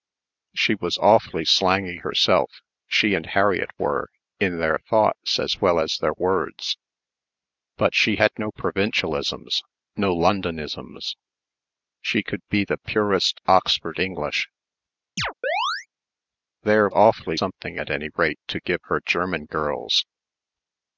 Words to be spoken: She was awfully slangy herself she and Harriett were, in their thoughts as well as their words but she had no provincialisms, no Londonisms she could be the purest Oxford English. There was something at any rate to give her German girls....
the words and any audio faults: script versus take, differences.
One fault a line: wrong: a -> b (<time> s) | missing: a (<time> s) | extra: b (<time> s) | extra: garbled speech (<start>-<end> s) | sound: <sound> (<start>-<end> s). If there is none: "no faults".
sound: chirp (15.2-15.9 s)
wrong: was -> awfully (16.9 s)